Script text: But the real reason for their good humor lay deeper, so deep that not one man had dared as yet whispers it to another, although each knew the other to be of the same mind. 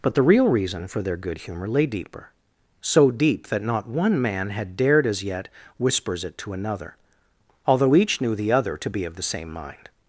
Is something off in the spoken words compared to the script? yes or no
no